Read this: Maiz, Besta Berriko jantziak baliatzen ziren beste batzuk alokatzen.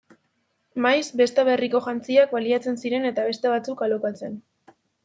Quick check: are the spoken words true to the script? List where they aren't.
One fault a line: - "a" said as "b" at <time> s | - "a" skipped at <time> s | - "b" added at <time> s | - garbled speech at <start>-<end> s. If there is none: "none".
- "eta" added at 3.1 s